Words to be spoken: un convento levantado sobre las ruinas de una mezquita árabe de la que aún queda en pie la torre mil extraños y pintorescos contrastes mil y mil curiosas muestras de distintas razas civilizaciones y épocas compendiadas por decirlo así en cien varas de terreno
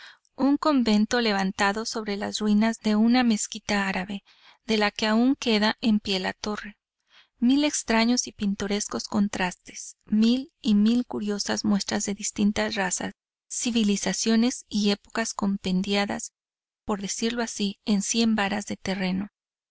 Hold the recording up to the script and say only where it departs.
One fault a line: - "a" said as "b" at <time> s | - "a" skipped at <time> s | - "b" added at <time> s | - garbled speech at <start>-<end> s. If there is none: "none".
none